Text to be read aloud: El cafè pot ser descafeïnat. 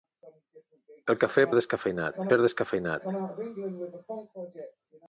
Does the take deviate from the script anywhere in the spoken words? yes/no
yes